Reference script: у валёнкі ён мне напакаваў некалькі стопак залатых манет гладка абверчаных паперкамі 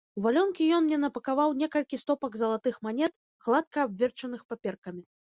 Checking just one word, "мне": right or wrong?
right